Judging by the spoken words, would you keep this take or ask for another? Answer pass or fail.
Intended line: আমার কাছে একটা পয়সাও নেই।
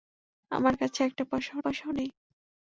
fail